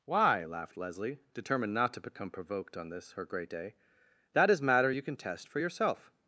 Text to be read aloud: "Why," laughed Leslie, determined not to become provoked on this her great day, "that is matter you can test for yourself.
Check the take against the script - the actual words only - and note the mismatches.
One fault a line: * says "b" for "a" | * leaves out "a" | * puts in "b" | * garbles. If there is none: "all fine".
all fine